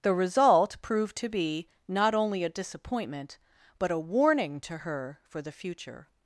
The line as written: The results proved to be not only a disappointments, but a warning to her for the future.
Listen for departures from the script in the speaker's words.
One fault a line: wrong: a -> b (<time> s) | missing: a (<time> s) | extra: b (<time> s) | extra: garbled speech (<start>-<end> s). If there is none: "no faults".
wrong: results -> result (0.1 s)
wrong: disappointments -> disappointment (2.5 s)